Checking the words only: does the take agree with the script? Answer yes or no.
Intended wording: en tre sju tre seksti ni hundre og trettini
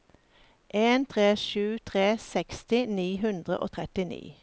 yes